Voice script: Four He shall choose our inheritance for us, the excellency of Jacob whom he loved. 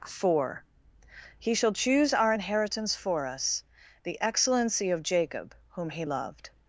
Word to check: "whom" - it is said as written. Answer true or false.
true